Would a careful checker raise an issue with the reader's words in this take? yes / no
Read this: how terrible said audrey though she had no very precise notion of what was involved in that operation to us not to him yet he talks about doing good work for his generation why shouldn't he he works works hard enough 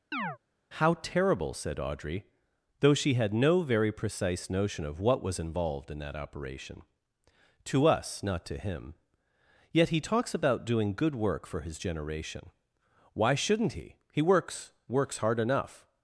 no